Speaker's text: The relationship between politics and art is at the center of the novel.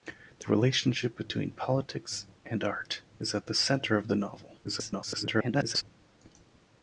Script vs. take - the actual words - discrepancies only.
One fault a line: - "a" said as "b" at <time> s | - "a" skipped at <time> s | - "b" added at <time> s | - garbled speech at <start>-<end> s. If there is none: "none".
- garbled speech at 4.6-5.8 s